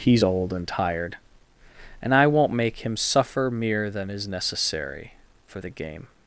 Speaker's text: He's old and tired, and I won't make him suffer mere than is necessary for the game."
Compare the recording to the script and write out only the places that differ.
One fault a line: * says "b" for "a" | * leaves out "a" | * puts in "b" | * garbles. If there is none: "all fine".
all fine